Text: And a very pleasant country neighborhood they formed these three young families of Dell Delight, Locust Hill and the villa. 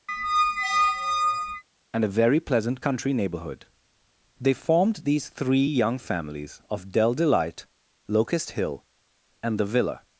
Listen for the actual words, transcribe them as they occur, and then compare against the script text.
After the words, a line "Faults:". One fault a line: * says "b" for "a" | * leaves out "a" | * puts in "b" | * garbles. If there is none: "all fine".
And a very pleasant country neighborhood they formed these three young families of Dell Delight, Locust Hill and the villa.
Faults:
all fine